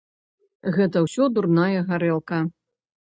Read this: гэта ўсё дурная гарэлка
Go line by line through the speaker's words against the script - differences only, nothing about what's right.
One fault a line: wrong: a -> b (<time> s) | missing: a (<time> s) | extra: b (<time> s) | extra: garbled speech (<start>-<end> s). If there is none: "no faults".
no faults